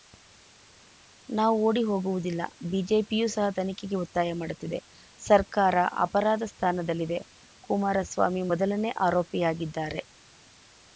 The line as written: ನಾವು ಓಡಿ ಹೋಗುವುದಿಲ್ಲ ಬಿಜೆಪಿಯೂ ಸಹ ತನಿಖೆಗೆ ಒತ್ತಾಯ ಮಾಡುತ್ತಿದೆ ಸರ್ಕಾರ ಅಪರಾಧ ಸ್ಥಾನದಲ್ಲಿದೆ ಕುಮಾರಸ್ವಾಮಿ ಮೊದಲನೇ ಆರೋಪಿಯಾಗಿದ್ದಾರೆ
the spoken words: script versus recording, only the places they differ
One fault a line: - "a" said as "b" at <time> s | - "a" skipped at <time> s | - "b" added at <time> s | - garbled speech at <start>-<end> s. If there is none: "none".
none